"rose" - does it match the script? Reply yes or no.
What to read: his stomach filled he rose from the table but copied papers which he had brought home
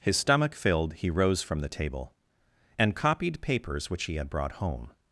yes